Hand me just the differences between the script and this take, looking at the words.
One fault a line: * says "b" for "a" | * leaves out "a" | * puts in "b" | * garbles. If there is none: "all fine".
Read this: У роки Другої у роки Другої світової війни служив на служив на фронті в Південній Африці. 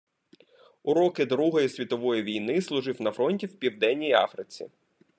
* leaves out "у роки Другої"
* leaves out "служив на"